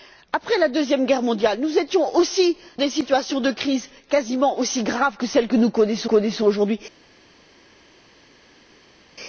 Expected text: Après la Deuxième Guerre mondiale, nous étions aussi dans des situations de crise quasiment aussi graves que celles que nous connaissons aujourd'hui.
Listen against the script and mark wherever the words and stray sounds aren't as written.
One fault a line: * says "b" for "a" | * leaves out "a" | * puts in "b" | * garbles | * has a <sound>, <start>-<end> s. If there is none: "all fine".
* leaves out "dans"
* puts in "connaissons"